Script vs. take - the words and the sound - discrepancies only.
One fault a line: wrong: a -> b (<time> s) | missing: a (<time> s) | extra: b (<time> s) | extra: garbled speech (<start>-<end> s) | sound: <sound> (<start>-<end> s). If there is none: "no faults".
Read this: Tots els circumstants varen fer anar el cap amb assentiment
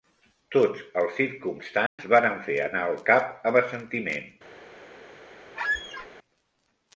sound: dropout (1.9-2.0 s)
sound: squeak (5.6-6.1 s)